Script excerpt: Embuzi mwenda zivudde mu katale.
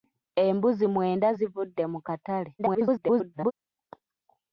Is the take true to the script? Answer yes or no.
no